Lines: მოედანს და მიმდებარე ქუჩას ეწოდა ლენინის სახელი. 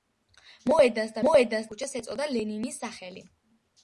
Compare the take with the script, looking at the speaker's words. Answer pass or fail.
fail